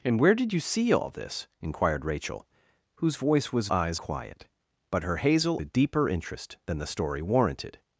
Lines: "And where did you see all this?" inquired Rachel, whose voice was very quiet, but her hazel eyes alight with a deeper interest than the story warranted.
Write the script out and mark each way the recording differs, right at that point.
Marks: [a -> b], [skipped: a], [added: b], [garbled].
"And where did you see all this?" inquired Rachel, whose voice was [very -> eyes] quiet, but her hazel [skipped: eyes alight with] a deeper interest than the story warranted.